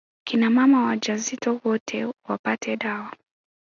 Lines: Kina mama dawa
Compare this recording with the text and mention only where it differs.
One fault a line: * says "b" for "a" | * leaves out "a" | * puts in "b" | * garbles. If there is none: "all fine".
* puts in "wajawazito wote wapate"